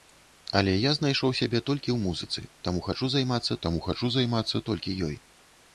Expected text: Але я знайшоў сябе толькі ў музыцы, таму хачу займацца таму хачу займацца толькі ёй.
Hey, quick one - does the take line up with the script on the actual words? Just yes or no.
yes